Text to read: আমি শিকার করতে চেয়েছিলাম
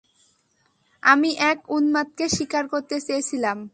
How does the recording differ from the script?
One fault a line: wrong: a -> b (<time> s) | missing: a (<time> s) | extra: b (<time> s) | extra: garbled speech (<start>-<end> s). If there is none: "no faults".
extra: এক উন্মাদকে (1.4 s)